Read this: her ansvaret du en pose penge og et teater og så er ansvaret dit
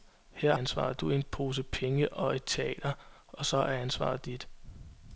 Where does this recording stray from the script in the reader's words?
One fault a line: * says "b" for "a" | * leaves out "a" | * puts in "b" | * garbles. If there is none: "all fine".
all fine